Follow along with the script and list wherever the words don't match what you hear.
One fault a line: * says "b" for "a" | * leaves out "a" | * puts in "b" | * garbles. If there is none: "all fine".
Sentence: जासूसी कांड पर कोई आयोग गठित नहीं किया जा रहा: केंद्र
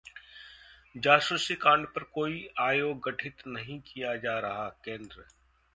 all fine